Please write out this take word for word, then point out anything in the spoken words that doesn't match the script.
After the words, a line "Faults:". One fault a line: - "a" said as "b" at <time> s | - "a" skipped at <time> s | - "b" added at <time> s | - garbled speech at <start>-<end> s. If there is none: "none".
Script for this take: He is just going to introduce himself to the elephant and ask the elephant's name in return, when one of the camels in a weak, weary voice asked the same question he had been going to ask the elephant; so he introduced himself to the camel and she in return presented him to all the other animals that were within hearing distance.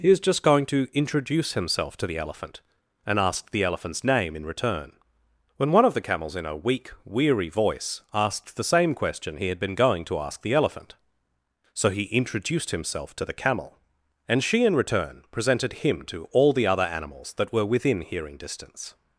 He is just going to introduce himself to the elephant and ask the elephant's name in return, when one of the camels in a weak, weary voice asked the same question he had been going to ask the elephant; so he introduced himself to the camel and she in return presented him to all the other animals that were within hearing distance.
Faults:
none